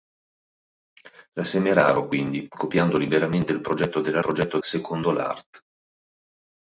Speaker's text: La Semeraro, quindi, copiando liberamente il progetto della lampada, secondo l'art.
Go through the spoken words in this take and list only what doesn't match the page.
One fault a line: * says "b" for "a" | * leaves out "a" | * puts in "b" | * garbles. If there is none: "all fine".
* says "progetto" for "lampada"